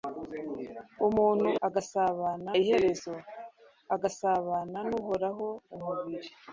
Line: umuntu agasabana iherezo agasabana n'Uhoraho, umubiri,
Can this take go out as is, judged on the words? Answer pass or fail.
pass